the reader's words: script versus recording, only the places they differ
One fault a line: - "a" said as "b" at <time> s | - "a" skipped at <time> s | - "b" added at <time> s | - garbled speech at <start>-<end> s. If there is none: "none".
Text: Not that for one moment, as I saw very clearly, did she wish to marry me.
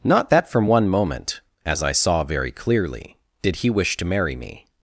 - "for" said as "from" at 0.5 s
- "she" said as "he" at 3.6 s